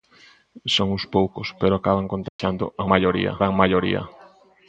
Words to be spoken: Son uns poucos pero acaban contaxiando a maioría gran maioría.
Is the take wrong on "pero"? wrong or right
right